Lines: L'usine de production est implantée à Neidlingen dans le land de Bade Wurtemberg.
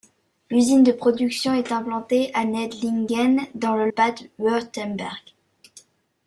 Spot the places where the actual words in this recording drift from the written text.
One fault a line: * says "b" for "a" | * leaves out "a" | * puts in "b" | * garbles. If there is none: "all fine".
* leaves out "land de"